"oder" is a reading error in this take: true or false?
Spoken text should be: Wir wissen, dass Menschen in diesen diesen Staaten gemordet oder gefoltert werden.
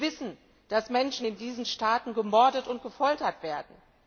true